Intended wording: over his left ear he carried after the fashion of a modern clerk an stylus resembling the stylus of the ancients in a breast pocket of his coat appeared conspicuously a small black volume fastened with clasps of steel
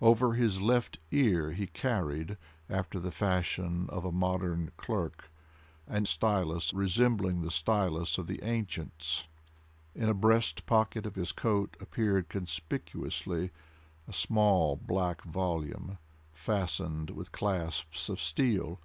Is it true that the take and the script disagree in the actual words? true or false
false